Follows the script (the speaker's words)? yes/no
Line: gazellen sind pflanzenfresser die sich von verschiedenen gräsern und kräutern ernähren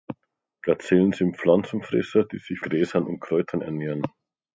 no